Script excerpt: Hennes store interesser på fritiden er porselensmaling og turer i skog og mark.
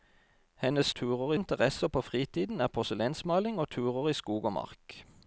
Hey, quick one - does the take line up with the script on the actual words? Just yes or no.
no